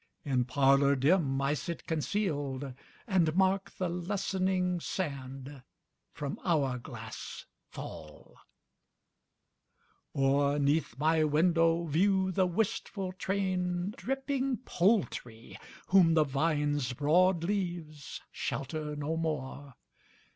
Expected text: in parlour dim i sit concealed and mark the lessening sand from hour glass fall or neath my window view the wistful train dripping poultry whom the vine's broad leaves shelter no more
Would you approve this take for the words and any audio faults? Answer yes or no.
yes